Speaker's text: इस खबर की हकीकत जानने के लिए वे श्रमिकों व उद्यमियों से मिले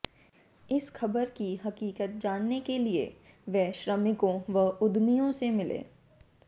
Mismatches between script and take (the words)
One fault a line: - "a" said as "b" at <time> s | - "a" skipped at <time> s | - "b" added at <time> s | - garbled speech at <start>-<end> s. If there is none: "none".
none